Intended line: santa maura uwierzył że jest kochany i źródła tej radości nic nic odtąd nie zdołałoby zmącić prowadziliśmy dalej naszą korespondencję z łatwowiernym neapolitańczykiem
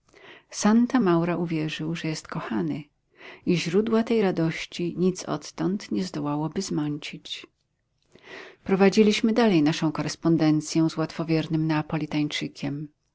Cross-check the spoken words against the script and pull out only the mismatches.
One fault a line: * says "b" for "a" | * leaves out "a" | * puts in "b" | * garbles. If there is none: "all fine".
* leaves out "nic"